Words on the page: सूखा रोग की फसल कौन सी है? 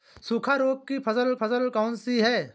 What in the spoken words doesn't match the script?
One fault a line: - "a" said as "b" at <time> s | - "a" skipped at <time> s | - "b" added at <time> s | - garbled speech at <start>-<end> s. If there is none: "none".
- "फसल" added at 1.3 s